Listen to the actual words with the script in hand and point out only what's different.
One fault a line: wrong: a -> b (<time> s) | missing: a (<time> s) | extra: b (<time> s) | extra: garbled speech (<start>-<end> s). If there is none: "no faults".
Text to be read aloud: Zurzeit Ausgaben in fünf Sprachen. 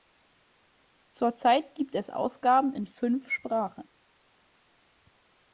extra: gibt es (1.8 s)